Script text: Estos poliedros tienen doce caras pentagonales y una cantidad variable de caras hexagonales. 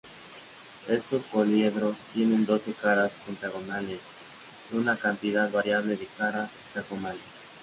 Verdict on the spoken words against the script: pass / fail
pass